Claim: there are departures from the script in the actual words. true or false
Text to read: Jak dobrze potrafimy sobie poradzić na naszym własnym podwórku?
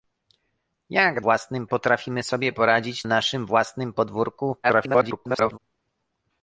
true